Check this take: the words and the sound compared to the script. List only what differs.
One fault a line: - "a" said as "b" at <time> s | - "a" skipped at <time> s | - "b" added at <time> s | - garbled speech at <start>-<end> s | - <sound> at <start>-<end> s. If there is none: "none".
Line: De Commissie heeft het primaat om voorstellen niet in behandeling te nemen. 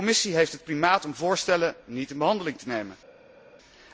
none